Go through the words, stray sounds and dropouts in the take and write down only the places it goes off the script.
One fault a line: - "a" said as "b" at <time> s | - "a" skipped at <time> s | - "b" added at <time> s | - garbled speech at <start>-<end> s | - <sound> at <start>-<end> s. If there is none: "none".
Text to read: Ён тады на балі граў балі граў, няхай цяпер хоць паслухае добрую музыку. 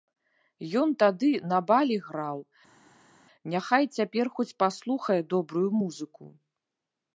- "балі граў" skipped at 2.4 s